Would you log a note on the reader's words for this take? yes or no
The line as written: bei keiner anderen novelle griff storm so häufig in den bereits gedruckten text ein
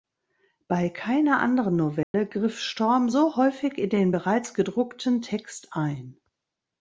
no